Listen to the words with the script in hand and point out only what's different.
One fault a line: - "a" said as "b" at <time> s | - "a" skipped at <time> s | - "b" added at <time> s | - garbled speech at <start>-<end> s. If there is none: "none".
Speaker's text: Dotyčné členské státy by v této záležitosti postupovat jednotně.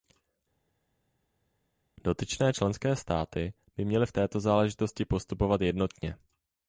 - "měly" added at 3.8 s